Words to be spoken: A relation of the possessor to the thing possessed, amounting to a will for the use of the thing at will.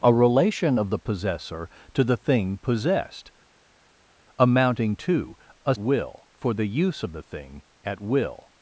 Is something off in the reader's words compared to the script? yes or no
no